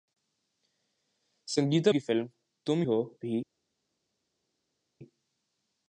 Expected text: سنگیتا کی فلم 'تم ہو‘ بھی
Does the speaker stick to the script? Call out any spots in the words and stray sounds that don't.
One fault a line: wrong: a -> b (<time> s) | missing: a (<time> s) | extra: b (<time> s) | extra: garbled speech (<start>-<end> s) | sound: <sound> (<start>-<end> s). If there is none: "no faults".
no faults